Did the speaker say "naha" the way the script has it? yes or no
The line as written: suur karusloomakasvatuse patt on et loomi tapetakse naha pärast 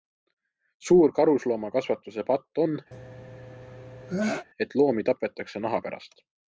yes